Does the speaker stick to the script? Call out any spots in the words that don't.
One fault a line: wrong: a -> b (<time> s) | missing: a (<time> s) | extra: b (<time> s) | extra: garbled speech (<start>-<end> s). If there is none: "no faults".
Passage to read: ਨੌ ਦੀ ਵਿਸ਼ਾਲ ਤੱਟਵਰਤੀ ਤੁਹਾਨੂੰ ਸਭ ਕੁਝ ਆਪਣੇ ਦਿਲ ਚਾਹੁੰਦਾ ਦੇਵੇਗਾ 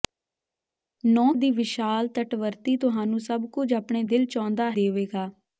no faults